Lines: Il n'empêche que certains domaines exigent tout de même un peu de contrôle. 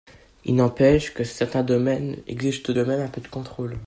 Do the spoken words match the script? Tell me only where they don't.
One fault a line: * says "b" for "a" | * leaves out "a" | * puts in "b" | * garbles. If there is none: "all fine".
all fine